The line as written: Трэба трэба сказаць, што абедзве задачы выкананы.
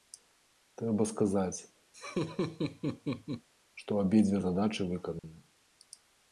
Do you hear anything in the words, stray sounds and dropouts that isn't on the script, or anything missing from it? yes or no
yes